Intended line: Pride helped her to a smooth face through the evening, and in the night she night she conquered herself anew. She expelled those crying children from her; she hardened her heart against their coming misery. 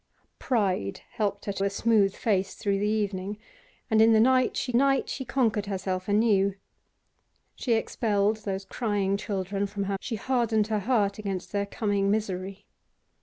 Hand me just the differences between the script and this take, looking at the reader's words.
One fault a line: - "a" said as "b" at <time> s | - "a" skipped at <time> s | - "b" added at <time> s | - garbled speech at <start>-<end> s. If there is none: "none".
none